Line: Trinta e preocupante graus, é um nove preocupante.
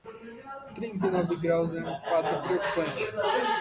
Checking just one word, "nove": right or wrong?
wrong